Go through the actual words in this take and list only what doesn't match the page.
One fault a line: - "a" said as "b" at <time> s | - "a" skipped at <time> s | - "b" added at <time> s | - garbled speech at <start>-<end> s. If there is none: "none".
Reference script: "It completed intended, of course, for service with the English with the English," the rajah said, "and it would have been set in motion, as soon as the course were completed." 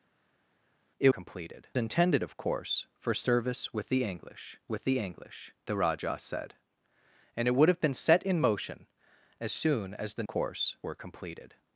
none